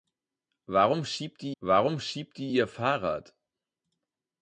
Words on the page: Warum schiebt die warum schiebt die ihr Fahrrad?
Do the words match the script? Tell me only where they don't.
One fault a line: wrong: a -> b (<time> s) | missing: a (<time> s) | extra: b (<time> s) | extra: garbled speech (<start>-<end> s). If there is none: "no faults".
no faults